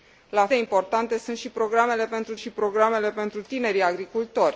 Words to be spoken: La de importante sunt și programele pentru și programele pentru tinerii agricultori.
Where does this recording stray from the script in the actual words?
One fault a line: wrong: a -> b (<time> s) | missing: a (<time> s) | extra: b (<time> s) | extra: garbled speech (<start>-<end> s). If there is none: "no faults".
no faults